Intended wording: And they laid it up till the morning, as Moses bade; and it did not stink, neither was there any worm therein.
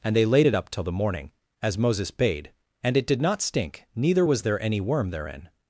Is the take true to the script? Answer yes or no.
yes